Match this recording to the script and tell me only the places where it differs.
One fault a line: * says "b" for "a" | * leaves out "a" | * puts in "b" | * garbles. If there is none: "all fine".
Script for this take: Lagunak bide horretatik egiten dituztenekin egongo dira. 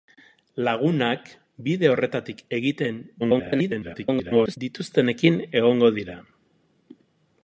* garbles